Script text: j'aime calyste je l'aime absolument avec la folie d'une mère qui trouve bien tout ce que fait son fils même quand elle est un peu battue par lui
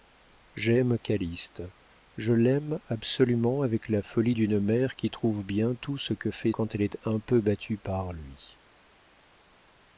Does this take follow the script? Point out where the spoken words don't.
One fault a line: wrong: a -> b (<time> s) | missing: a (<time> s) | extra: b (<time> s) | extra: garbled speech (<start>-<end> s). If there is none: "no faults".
missing: son fils même (6.5 s)